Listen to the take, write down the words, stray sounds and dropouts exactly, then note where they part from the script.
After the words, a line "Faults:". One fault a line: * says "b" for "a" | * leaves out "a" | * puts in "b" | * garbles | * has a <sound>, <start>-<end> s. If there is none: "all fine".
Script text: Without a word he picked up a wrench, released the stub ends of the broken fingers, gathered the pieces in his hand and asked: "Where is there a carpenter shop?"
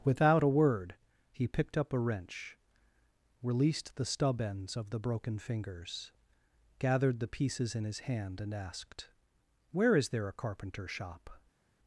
Without a word he picked up a wrench, released the stub ends of the broken fingers, gathered the pieces in his hand and asked: "Where is there a carpenter shop?"
Faults:
all fine